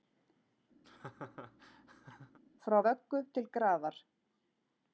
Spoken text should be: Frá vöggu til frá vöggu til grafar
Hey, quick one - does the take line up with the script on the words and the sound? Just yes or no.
no